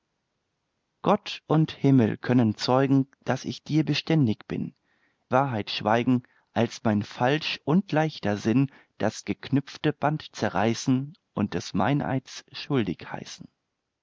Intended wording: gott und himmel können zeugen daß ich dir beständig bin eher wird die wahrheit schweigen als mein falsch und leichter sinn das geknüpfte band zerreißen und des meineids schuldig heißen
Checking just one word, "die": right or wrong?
wrong